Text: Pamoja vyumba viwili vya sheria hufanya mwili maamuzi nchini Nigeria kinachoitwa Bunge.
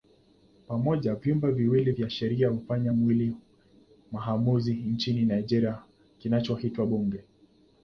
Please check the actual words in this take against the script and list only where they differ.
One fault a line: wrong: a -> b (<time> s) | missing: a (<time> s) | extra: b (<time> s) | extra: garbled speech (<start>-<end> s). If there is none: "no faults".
no faults